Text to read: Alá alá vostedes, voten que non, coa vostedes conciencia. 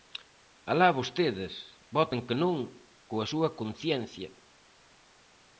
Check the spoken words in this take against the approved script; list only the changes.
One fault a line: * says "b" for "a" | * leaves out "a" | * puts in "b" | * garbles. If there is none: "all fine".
* leaves out "alá"
* says "súa" for "vostedes"